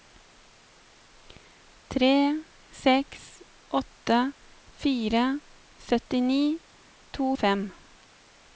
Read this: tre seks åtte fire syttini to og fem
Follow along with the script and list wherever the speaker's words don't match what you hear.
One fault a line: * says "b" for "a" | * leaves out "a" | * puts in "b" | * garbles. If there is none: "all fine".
all fine